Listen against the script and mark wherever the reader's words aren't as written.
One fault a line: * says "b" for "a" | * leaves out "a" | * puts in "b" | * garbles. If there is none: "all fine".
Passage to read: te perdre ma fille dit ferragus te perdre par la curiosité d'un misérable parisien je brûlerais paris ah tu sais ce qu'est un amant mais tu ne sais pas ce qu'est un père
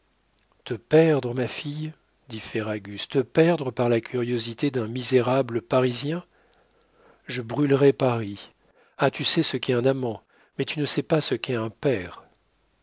all fine